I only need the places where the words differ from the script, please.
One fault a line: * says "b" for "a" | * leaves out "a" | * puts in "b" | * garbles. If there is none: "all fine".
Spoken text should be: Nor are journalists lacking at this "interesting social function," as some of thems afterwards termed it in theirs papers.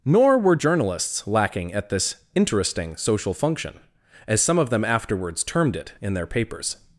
* says "were" for "are"
* says "them" for "thems"
* says "their" for "theirs"